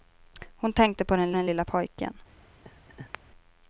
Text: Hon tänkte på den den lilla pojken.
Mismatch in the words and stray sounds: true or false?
true